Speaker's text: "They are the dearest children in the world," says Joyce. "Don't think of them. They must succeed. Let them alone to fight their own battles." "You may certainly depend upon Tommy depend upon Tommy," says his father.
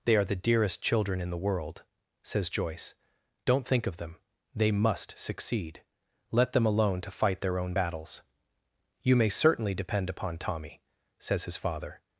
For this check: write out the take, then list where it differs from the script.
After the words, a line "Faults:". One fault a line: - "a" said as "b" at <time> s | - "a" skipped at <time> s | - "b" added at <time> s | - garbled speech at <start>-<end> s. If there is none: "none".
"They are the dearest children in the world," says Joyce. "Don't think of them. They must succeed. Let them alone to fight their own battles." "You may certainly depend upon Tommy," says his father.
Faults:
- "depend upon Tommy" skipped at 10.8 s